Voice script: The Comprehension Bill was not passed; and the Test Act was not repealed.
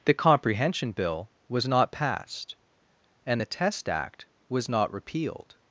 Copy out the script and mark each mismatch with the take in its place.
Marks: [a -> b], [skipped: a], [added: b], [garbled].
The Comprehension Bill was not passed; and the Test Act was not repealed.